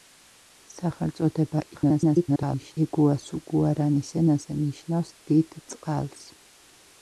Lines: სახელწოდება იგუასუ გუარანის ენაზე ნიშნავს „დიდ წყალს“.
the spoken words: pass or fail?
fail